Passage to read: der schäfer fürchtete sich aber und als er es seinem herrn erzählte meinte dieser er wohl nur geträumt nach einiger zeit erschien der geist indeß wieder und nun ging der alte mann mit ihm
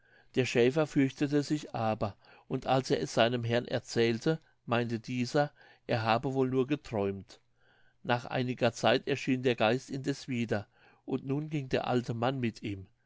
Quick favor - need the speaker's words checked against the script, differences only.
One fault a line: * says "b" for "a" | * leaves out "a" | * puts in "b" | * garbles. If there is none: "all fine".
* puts in "habe"